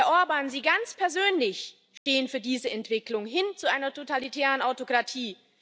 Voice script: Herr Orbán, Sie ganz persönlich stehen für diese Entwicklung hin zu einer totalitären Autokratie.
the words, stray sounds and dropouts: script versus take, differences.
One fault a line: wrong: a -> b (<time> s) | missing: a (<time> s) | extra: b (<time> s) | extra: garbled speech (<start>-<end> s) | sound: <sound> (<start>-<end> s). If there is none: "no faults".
sound: dropout (2.0-2.1 s)